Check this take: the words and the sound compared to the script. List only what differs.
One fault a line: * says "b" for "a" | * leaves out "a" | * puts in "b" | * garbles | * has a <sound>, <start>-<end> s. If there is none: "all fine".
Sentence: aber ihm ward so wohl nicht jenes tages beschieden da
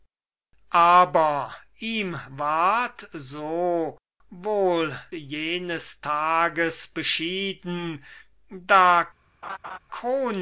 * leaves out "nicht"
* has a laugh, 9.4-9.8 s